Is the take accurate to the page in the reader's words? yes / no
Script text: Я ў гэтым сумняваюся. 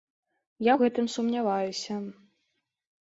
yes